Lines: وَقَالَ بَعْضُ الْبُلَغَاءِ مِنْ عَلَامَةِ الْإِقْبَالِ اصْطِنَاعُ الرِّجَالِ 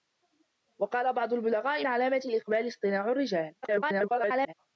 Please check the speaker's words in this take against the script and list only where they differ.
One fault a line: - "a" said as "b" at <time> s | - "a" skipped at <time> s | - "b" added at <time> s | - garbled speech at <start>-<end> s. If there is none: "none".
- "مِنْ" skipped at 1.9 s
- garbled speech at 3.6-4.5 s